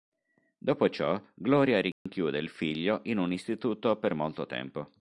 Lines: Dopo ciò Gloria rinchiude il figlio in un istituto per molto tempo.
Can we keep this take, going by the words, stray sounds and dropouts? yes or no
no